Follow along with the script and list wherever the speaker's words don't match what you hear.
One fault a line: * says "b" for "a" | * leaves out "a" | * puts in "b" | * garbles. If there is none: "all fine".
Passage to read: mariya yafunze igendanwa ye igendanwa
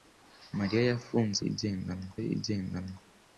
all fine